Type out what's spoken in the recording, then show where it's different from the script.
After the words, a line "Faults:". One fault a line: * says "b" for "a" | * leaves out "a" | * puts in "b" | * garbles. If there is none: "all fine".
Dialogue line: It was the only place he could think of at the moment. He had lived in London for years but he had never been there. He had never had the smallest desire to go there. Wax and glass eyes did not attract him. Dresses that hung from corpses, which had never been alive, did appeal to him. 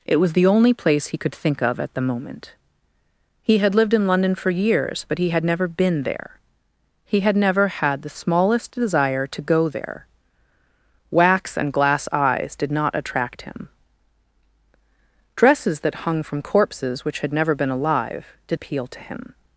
It was the only place he could think of at the moment. He had lived in London for years but he had never been there. He had never had the smallest desire to go there. Wax and glass eyes did not attract him. Dresses that hung from corpses, which had never been alive, did appeal to him.
Faults:
all fine